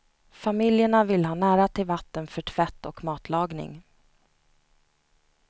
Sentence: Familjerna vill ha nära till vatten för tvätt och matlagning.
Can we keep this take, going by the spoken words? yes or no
yes